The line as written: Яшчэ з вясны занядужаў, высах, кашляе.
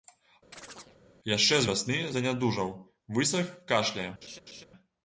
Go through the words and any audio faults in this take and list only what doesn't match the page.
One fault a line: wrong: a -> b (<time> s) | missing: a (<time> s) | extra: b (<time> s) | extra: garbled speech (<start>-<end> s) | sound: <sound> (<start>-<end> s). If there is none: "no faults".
sound: chirp (0.5-1.0 s)
sound: laugh (4.2-4.6 s)